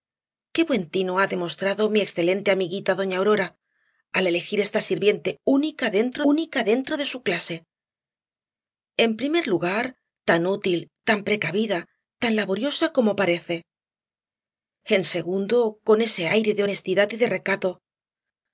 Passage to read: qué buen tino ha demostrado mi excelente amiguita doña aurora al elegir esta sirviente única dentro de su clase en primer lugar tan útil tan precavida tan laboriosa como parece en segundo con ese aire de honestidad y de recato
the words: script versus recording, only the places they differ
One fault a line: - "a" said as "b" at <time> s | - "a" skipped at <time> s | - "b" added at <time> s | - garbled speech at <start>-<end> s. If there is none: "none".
- "única dentro" added at 6.3 s